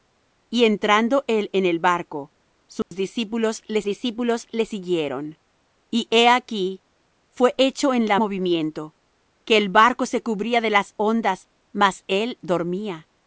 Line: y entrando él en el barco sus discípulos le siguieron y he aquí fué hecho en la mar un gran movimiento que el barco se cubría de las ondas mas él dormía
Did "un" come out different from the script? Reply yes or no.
yes